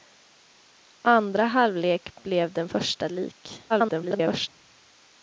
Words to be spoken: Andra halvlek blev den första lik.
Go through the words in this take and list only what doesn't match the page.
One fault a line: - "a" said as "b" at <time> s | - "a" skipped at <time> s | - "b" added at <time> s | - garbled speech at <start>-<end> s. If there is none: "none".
- garbled speech at 3.7-4.5 s